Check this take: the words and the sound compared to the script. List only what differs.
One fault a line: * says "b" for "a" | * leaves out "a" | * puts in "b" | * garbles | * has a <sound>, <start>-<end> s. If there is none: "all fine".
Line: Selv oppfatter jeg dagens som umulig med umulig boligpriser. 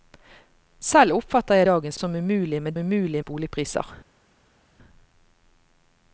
all fine